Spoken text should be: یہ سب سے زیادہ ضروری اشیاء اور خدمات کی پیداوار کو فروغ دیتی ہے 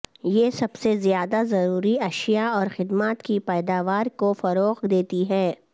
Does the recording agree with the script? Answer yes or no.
yes